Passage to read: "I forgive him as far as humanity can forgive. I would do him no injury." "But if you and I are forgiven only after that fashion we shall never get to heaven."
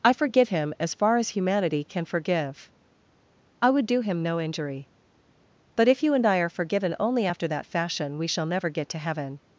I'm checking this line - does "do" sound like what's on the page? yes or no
yes